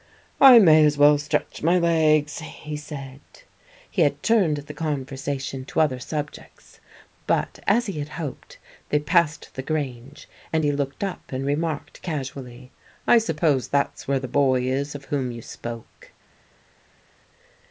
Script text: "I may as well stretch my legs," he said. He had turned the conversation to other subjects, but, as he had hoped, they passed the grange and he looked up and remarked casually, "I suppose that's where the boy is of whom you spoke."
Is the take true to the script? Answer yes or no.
yes